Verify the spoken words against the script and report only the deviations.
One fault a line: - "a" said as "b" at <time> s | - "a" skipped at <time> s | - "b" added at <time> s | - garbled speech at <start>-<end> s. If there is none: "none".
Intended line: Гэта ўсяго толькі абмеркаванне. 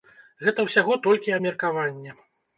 none